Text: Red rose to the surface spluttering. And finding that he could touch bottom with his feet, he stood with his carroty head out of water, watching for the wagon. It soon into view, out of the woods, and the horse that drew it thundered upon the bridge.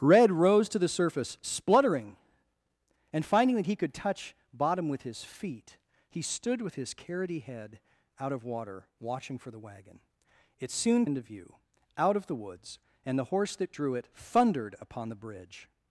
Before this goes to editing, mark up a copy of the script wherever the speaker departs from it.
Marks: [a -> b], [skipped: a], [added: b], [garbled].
Red rose to the surface spluttering. And finding that he could touch bottom with his feet, he stood with his carroty head out of water, watching for the wagon. It soon into view, out of the woods, and the horse that drew it thundered upon the bridge.